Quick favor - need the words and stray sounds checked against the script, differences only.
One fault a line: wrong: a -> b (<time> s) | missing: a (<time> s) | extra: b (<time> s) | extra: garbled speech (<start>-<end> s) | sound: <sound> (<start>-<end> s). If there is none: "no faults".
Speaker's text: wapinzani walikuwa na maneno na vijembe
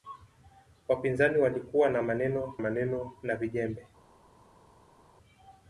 extra: maneno (2.6 s)